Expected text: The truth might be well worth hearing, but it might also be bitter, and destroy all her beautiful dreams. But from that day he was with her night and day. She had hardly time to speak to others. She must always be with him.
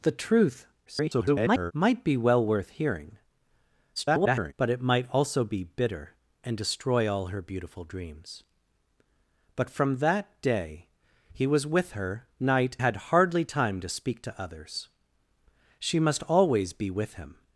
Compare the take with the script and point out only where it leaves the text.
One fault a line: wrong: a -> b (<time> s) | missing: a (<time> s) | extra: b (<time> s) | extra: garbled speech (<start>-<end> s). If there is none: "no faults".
extra: garbled speech (0.9-1.7 s)
extra: garbled speech (4.0-4.5 s)
missing: and day She (12.8 s)